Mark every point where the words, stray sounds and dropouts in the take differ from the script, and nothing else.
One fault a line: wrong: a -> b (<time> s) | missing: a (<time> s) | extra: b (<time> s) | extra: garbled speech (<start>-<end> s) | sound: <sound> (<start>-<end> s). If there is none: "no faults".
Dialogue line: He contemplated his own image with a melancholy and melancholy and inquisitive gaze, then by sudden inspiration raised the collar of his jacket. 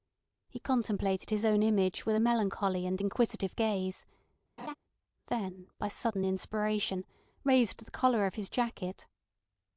missing: melancholy and (3.0 s)
sound: laugh (4.6-4.7 s)